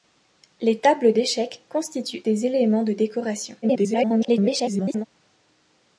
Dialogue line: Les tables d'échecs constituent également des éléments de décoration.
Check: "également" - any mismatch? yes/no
yes